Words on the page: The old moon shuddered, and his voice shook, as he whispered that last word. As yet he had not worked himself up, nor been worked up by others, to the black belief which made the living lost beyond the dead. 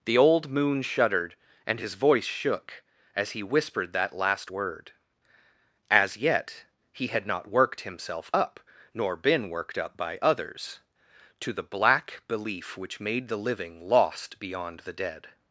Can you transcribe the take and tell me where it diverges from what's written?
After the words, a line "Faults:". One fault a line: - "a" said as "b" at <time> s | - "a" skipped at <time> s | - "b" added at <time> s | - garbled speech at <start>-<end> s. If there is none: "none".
The old moon shuddered, and his voice shook, as he whispered that last word. As yet he had not worked himself up, nor been worked up by others, to the black belief which made the living lost beyond the dead.
Faults:
none